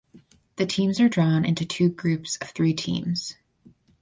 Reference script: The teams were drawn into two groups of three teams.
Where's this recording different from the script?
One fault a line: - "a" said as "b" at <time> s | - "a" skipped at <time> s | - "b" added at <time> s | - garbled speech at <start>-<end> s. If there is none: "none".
- "were" said as "are" at 1.0 s